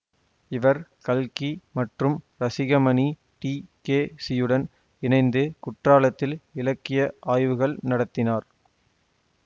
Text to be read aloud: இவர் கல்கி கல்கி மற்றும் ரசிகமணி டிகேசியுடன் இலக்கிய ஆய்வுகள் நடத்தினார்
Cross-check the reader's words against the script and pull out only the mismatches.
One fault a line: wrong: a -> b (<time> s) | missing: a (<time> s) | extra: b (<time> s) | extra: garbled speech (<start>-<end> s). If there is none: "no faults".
missing: கல்கி (1.5 s)
extra: இணைந்து குற்றாலத்தில் (5.0 s)